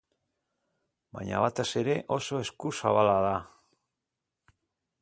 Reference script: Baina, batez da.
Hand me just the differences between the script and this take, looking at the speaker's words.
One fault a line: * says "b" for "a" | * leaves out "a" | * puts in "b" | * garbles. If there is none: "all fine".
* puts in "ere oso eskuzabala"